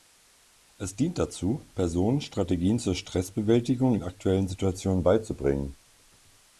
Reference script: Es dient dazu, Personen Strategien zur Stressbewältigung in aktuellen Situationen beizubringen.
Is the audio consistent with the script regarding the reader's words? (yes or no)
yes